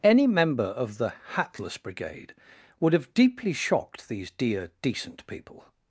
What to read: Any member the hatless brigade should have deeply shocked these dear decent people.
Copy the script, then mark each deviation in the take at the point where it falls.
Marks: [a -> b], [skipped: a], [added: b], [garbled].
Any member [added: of] the hatless brigade [should -> would] have deeply shocked these dear decent people.